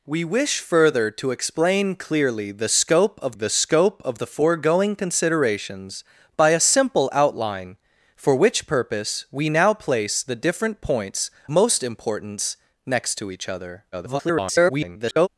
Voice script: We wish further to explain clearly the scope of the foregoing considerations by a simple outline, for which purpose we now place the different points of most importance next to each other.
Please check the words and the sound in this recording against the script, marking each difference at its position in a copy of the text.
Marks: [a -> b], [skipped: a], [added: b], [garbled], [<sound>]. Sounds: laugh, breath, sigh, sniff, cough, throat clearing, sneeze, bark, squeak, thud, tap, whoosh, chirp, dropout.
We wish further to explain clearly the scope of the [added: scope of the] foregoing considerations by a simple outline, for which purpose we now place the different points [skipped: of] most importance next to each other. [garbled]